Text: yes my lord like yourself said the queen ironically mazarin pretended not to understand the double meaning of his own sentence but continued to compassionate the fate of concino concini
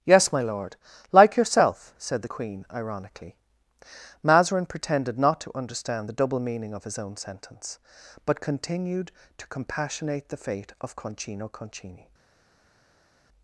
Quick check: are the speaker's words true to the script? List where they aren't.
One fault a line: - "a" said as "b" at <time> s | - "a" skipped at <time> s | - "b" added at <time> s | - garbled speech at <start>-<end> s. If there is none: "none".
none